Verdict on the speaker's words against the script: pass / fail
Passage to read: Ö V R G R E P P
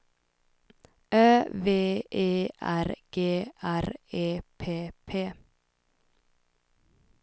fail